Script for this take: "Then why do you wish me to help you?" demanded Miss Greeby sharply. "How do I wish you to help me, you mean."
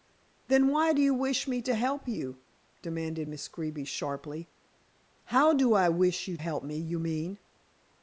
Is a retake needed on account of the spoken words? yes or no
yes